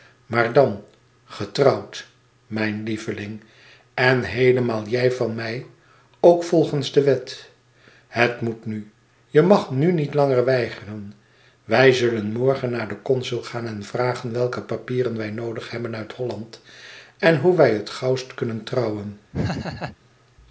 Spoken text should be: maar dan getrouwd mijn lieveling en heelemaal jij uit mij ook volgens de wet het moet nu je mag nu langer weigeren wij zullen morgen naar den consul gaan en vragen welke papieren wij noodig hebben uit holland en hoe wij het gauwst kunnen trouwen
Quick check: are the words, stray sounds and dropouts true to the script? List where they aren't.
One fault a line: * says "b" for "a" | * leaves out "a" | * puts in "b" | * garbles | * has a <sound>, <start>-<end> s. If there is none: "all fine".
* says "van" for "uit"
* puts in "niet"
* has a laugh, 19.3-20.0 s